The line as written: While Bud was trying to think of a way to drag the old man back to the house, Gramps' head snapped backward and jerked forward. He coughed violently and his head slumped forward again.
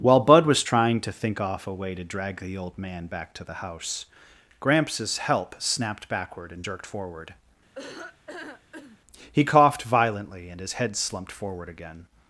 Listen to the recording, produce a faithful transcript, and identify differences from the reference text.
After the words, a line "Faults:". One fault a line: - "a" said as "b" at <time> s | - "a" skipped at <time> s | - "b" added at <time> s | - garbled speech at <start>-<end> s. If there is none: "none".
While Bud was trying to think off a way to drag the old man back to the house, Gramps' help snapped backward and jerked forward. He coughed violently and his head slumped forward again.
Faults:
- "of" said as "off" at 1.4 s
- "head" said as "help" at 5.2 s